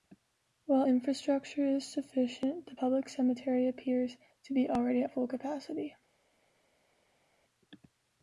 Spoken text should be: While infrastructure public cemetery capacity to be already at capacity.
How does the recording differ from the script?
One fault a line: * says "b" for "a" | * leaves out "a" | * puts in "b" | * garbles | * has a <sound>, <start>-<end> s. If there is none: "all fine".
* puts in "is sufficient the"
* says "appears" for "capacity"
* puts in "full"